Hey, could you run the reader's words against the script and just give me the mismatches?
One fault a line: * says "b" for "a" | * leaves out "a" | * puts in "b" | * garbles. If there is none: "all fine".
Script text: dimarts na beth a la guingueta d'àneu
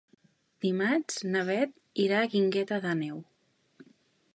* puts in "irà"